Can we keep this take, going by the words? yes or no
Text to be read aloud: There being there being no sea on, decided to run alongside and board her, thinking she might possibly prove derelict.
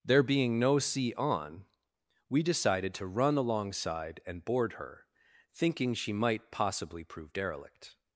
no